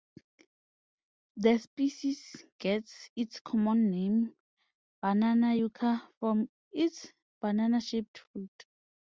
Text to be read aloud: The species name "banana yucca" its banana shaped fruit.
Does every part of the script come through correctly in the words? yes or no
no